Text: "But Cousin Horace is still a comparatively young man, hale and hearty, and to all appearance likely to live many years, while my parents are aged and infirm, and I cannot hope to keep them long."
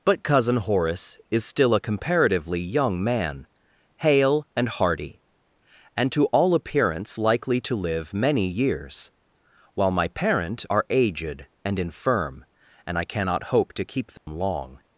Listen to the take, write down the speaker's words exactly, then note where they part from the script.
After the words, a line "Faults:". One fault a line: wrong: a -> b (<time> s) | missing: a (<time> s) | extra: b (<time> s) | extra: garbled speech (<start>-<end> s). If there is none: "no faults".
"But Cousin Horace is still a comparatively young man, hale and hearty, and to all appearance likely to live many years, while my parent are aged and infirm, and I cannot hope to keep them long."
Faults:
wrong: parents -> parent (10.1 s)